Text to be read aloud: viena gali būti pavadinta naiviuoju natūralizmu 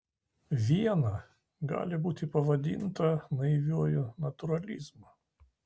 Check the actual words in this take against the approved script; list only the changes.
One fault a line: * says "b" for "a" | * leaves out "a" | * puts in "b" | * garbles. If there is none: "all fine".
all fine